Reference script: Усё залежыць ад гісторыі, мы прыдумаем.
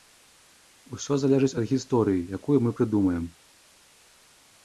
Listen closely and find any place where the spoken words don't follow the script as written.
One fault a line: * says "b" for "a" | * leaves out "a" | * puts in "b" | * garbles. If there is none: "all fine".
* puts in "якую"